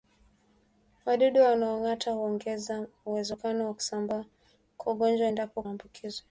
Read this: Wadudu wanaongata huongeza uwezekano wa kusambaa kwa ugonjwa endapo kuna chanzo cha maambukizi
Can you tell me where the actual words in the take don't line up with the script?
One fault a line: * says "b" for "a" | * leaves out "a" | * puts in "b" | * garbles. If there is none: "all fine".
* leaves out "kuna chanzo cha"